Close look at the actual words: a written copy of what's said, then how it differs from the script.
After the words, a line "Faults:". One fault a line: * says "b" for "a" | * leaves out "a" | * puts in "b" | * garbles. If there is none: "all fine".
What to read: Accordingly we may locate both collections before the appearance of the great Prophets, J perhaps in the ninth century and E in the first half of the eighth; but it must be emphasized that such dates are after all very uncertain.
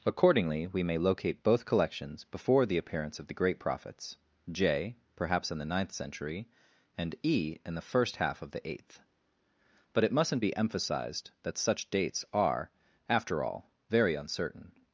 Accordingly we may locate both collections before the appearance of the great Prophets, J perhaps in the ninth century and E in the first half of the eighth; but it mustn't be emphasized that such dates are after all very uncertain.
Faults:
* says "mustn't" for "must"